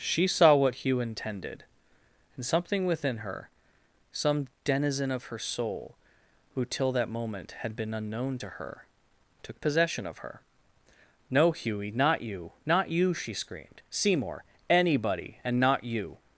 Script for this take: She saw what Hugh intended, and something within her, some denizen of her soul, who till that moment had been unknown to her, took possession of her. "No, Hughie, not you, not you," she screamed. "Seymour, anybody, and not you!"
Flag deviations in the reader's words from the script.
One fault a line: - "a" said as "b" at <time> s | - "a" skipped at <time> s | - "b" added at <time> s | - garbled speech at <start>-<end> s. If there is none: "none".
none